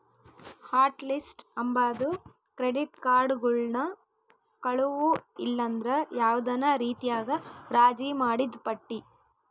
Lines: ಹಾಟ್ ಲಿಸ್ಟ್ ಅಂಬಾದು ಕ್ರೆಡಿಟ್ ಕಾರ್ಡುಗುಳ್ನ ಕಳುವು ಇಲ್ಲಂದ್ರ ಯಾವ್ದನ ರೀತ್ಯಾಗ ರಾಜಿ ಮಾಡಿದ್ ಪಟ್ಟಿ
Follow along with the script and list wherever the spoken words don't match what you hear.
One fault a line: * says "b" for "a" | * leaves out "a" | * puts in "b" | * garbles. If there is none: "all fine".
all fine